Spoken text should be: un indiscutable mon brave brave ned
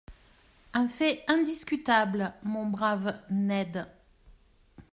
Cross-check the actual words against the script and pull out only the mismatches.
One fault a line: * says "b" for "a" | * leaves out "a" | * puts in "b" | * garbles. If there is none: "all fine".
* puts in "fait"
* leaves out "brave"